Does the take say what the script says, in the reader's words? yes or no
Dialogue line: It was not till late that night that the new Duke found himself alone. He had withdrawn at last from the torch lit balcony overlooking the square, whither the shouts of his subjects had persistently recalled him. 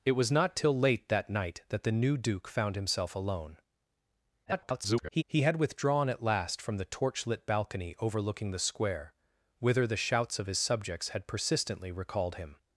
no